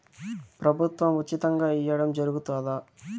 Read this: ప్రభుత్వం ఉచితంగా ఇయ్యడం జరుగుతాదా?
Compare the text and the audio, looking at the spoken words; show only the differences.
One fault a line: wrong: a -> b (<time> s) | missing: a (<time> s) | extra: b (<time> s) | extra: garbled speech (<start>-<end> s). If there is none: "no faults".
no faults